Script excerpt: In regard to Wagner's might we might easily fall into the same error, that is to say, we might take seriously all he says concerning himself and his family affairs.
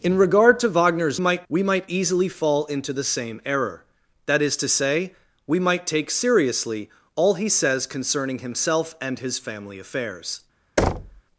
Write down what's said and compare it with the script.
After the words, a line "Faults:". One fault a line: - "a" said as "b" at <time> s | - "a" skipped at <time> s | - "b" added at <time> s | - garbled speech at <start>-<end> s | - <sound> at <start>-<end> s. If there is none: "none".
In regard to Wagner's might we might easily fall into the same error, that is to say, we might take seriously all he says concerning himself and his family affairs.
Faults:
- thud at 10.8-11.2 s